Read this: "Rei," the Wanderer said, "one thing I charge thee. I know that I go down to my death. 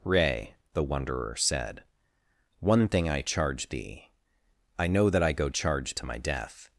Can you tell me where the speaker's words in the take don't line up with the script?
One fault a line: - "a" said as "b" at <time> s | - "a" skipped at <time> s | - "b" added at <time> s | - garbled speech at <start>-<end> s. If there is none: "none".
- "down" said as "charge" at 5.5 s